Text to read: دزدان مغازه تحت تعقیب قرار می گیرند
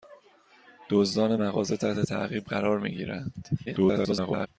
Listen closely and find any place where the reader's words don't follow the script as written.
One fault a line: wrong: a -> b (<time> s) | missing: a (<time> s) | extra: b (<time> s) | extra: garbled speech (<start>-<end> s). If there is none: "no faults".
extra: garbled speech (3.7-4.5 s)